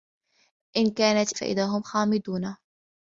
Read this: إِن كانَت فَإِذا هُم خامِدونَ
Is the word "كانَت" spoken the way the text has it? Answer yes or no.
yes